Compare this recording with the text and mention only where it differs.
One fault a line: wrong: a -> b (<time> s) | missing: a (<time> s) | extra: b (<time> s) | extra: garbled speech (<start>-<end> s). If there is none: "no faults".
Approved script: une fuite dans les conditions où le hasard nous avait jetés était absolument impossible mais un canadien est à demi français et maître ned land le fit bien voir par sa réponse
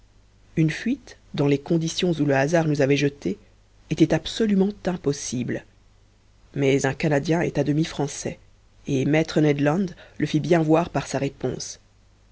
no faults